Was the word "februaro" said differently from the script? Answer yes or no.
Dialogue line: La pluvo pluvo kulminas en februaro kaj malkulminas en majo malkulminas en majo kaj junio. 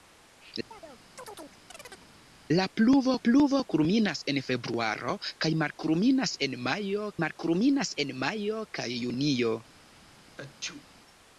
no